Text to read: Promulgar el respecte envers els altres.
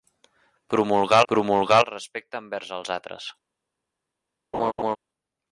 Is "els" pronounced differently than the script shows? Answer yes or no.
no